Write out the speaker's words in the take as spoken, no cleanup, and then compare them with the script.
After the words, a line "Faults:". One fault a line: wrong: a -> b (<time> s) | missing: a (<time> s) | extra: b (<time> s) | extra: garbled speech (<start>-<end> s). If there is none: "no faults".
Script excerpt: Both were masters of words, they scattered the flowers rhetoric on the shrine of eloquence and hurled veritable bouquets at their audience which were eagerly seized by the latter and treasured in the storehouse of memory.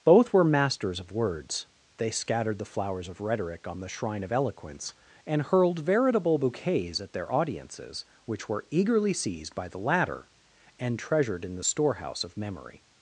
Both were masters of words, they scattered the flowers of rhetoric on the shrine of eloquence and hurled veritable bouquets at their audiences which were eagerly seized by the latter and treasured in the storehouse of memory.
Faults:
extra: of (3.1 s)
wrong: audience -> audiences (7.3 s)